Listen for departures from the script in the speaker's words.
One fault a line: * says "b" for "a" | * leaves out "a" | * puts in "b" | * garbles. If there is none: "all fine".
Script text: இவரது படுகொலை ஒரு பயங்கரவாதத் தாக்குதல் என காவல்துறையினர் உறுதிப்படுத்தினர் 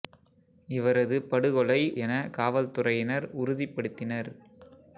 * leaves out "ஒரு பயங்கரவாதத் தாக்குதல்"